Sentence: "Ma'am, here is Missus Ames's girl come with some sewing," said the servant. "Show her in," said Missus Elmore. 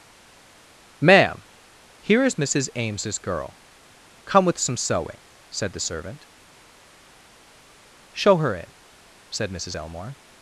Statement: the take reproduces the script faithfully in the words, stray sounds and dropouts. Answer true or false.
true